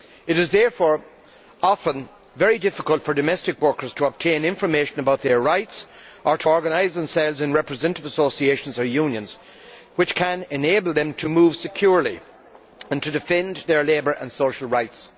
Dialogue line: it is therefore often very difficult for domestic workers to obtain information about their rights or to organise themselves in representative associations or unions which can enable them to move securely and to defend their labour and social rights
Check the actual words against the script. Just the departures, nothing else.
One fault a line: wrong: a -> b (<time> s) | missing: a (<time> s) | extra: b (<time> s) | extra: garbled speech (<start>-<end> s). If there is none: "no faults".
no faults